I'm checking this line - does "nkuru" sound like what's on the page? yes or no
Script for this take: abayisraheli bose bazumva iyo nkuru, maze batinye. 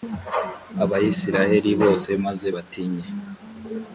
no